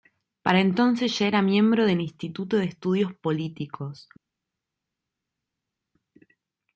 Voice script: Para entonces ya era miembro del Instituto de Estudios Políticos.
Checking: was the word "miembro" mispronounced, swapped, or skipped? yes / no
no